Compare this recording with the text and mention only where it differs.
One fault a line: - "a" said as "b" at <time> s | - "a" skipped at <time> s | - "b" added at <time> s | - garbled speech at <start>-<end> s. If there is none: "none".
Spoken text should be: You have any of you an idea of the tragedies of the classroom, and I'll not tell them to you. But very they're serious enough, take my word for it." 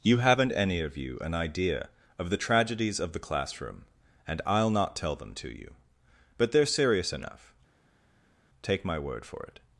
- "have" said as "haven't" at 0.2 s
- "very" skipped at 6.5 s